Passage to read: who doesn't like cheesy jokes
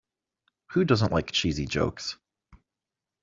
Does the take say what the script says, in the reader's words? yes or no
yes